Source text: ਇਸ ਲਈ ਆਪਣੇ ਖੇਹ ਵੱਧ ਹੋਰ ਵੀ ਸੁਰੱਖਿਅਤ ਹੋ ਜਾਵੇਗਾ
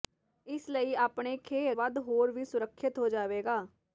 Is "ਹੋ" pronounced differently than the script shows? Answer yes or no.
no